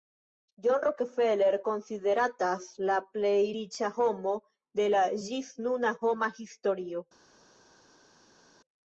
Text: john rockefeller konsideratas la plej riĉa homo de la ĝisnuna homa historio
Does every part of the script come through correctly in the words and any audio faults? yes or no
yes